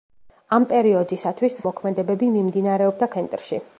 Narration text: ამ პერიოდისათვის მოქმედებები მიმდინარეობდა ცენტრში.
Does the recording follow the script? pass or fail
pass